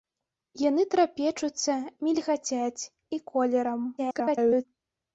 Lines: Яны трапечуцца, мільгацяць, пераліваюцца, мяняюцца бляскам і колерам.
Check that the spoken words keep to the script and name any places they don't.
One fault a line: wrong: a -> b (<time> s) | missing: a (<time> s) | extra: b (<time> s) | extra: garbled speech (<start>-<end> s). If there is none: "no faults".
missing: пераліваюцца мяняюцца бляскам (2.9 s)
extra: garbled speech (4.0-4.7 s)